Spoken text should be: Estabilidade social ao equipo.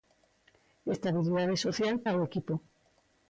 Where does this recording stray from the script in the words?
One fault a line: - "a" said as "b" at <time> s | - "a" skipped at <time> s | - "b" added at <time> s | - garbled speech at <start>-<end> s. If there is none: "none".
none